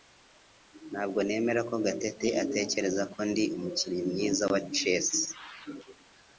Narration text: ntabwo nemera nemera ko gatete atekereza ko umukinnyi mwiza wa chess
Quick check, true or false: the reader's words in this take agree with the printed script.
false